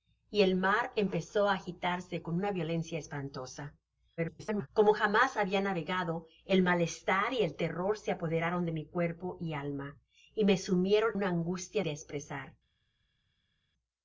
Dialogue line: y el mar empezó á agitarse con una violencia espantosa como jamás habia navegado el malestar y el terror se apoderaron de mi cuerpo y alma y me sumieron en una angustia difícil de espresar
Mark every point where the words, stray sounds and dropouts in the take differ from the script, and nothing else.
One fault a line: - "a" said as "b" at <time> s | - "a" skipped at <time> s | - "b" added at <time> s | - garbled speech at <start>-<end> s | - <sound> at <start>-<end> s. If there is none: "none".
- garbled speech at 4.2-4.7 s
- "en" skipped at 11.1 s
- "difícil" skipped at 11.8 s